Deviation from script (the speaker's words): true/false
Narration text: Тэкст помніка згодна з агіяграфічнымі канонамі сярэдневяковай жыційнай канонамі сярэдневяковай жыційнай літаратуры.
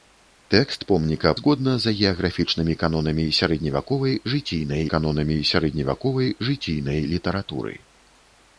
false